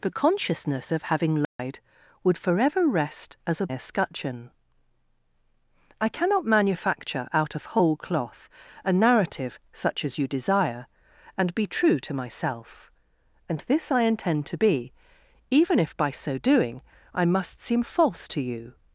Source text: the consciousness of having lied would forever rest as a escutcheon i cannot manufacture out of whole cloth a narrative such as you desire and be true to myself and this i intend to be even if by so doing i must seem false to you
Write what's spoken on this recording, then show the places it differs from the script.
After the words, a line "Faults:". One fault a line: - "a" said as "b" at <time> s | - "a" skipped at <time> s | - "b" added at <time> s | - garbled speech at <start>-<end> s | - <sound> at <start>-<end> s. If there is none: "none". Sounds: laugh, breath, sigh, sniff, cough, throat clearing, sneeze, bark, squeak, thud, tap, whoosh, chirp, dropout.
the consciousness of having lied would forever rest as a escutcheon i cannot manufacture out of whole cloth a narrative such as you desire and be true to myself and this i intend to be even if by so doing i must seem false to you
Faults:
- dropout at 1.4-1.6 s